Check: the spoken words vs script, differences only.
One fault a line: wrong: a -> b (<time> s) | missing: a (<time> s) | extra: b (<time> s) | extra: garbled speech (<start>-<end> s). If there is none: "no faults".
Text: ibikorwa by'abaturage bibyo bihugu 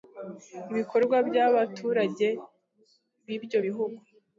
no faults